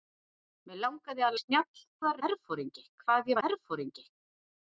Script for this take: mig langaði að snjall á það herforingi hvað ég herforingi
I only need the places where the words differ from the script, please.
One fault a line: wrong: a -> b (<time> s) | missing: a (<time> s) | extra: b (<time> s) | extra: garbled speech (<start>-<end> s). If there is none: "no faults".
no faults